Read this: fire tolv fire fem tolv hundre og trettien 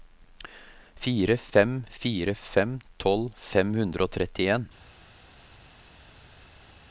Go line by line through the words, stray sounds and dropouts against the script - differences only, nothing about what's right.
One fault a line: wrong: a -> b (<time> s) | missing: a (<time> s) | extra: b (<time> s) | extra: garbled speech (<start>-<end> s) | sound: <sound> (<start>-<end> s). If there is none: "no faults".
wrong: tolv -> fem (1.4 s)
extra: fem (3.5 s)